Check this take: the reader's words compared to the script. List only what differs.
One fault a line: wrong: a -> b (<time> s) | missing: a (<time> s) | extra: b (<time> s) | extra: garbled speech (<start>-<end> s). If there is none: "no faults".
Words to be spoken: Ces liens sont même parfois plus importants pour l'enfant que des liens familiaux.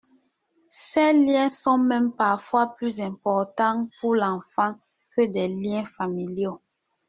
no faults